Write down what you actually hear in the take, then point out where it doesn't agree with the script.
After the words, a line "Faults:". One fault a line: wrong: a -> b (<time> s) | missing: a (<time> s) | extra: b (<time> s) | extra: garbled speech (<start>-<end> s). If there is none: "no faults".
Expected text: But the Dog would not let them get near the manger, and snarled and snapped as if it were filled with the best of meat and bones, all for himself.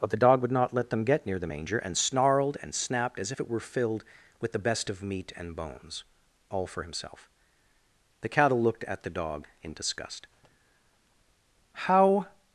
But the Dog would not let them get near the manger, and snarled and snapped as if it were filled with the best of meat and bones, all for himself. The Cattle looked at the Dog in disgust. "How
Faults:
extra: The Cattle looked at the Dog in disgust How (8.2 s)